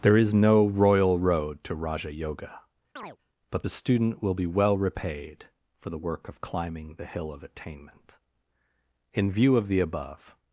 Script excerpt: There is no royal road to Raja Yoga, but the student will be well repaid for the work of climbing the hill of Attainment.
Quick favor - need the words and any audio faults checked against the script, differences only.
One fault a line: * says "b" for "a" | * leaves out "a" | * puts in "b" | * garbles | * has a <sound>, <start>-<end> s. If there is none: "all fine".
* has a chirp, 3.0-3.2 s
* puts in "In view of the above"